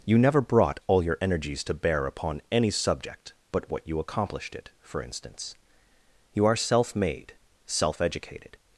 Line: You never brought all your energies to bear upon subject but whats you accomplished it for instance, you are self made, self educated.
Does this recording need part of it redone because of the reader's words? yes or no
yes